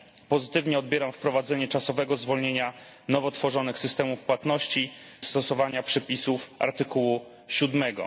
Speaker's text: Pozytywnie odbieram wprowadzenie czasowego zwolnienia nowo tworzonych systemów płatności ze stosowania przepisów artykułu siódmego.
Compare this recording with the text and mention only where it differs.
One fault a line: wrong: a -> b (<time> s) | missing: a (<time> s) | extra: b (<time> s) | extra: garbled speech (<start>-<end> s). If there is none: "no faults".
missing: ze (4.9 s)